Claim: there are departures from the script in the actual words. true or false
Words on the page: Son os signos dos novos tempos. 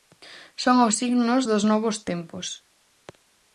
false